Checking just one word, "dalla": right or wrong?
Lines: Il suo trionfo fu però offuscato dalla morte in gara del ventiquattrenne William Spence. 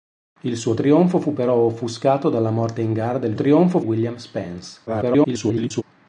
right